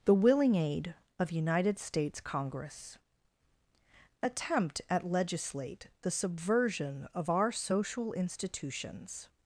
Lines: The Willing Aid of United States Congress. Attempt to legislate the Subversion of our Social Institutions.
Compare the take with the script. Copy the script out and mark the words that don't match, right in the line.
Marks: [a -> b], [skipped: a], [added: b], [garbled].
The Willing Aid of United States Congress. Attempt [to -> at] legislate the Subversion of our Social Institutions.